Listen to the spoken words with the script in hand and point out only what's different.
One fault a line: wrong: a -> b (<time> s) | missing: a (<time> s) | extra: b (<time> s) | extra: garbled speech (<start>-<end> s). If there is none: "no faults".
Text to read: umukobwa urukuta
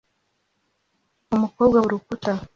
no faults